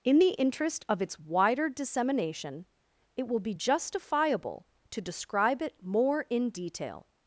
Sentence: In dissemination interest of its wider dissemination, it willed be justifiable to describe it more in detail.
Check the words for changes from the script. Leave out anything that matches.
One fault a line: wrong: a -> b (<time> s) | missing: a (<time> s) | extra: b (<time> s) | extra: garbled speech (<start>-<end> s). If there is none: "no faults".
wrong: dissemination -> the (0.2 s)
wrong: willed -> will (3.3 s)